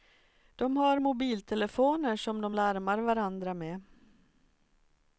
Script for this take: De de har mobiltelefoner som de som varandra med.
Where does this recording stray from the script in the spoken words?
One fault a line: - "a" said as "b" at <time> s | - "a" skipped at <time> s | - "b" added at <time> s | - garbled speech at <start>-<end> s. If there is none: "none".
- "de" skipped at 0.8 s
- "som" said as "larmar" at 2.5 s